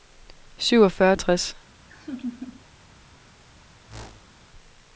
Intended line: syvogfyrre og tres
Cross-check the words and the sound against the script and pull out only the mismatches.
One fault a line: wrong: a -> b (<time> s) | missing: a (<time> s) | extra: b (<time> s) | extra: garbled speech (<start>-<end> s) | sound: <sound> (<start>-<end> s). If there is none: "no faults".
sound: laugh (1.9-2.6 s)
sound: whoosh (3.9-4.4 s)